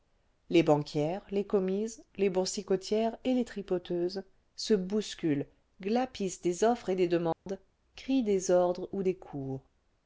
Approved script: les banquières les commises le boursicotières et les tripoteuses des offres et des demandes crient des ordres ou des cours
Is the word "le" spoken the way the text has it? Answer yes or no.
no